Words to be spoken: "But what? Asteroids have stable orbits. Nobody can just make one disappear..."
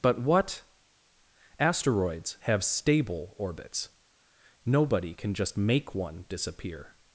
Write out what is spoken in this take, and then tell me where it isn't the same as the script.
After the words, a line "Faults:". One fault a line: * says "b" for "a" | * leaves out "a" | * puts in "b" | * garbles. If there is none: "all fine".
"But what? Asteroids have stable orbits. Nobody can just make one disappear..."
Faults:
all fine